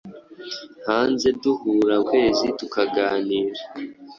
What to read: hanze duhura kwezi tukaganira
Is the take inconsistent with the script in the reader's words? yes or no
no